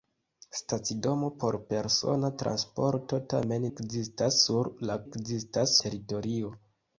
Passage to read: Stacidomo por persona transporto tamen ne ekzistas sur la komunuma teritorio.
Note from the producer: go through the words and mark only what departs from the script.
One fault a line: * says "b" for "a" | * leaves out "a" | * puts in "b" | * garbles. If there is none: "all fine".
* leaves out "ne"
* says "ekzistas" for "komunuma"